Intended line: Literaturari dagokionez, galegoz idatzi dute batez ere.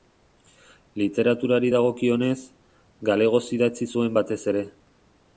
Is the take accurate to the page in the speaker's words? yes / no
no